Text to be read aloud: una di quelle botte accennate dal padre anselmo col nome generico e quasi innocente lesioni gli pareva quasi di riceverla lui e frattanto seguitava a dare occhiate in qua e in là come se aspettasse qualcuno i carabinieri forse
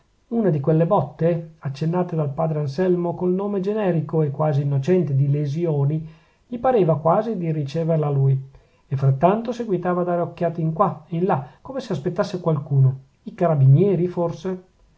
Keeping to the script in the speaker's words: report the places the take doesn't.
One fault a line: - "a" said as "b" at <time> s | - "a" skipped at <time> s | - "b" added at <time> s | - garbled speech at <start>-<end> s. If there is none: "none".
- "di" added at 5.2 s